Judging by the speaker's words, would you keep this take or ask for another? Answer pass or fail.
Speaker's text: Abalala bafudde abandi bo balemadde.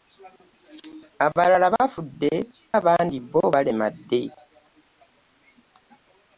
pass